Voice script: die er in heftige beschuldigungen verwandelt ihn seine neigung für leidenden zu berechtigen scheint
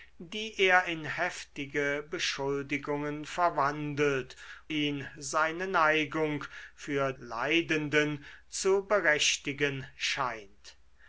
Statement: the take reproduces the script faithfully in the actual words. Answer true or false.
true